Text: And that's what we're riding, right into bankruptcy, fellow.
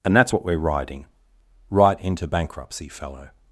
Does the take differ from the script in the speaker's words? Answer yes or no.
no